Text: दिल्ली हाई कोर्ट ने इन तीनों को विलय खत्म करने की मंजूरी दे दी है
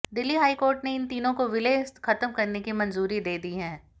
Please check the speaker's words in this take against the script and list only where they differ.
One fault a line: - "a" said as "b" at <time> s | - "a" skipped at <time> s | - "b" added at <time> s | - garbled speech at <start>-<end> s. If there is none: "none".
none